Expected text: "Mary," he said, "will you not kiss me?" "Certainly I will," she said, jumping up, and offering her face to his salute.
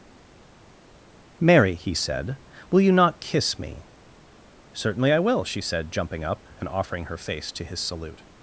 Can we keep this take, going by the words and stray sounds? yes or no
yes